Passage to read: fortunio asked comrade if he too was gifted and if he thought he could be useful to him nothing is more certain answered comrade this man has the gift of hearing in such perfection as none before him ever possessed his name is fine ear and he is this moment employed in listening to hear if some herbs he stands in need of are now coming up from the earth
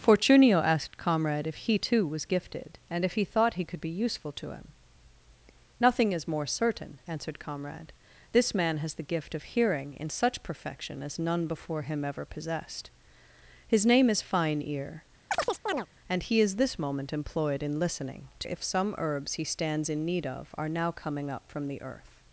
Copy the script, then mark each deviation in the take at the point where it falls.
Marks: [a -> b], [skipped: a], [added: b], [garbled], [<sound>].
fortunio asked comrade if he too was gifted and if he thought he could be useful to him nothing is more certain answered comrade this man has the gift of hearing in such perfection as none before him ever possessed his name is fine ear [chirp] and he is this moment employed in listening to [skipped: hear] if some herbs he stands in need of are now coming up from the earth